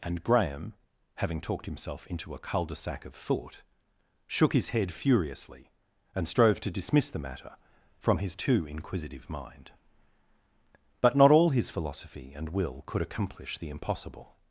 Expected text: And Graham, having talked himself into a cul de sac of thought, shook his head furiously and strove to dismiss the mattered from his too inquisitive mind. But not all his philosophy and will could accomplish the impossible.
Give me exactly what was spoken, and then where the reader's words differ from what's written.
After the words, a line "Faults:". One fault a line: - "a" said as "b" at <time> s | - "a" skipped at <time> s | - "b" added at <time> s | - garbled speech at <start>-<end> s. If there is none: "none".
And Graham, having talked himself into a cul de sac of thought, shook his head furiously and strove to dismiss the matter from his too inquisitive mind. But not all his philosophy and will could accomplish the impossible.
Faults:
- "mattered" said as "matter" at 7.2 s